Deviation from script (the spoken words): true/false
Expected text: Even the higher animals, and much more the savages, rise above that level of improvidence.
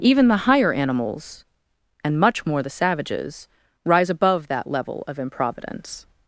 false